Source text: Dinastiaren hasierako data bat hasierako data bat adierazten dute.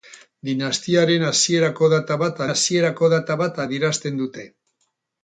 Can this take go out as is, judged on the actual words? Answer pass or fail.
pass